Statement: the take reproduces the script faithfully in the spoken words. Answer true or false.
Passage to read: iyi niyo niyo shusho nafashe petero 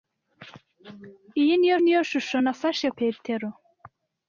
true